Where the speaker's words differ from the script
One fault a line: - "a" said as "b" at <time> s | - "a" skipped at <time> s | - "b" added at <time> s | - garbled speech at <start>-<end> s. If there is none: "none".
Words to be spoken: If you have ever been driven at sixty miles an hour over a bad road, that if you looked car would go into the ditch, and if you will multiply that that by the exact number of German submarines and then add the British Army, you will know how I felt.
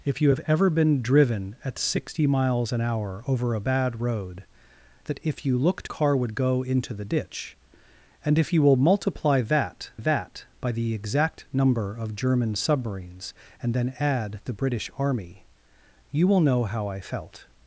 none